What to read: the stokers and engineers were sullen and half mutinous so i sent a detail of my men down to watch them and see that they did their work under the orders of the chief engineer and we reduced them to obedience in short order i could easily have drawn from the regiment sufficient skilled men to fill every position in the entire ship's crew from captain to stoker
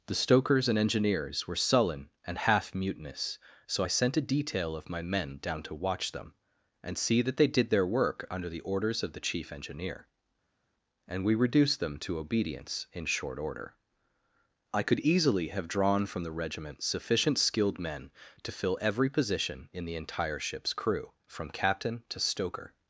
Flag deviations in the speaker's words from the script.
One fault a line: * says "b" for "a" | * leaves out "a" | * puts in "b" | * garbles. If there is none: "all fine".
all fine